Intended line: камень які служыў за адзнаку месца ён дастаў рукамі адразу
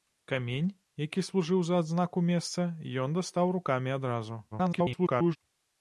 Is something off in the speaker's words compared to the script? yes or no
yes